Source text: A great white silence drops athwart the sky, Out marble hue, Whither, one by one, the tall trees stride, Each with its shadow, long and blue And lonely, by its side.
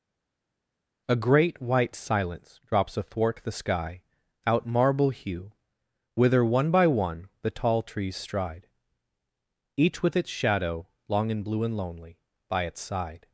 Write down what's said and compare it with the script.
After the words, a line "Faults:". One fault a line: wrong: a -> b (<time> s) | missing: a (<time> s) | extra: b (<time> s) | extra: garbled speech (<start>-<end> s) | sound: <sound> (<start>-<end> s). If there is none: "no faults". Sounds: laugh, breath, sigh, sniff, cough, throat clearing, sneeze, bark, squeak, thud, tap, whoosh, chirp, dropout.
A great white silence drops athwart the sky, Out marble hue, Whither, one by one, the tall trees stride, Each with its shadow, long and blue And lonely, by its side.
Faults:
no faults